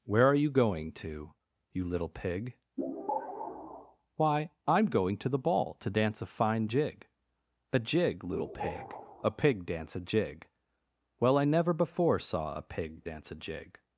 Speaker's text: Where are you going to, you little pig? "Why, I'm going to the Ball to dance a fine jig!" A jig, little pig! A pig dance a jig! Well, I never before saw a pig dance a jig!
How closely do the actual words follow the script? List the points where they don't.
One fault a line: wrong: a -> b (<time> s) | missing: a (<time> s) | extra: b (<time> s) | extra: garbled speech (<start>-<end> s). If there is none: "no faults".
no faults